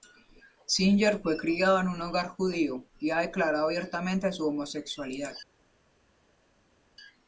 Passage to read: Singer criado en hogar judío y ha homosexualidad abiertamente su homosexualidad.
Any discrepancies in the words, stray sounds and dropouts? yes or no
yes